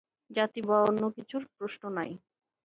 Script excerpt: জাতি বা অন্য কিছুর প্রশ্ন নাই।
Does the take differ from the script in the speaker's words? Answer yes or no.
no